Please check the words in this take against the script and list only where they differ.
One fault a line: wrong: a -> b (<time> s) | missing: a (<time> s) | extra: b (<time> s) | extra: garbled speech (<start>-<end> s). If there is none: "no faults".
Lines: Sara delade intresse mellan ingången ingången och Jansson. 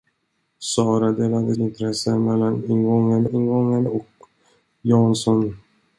no faults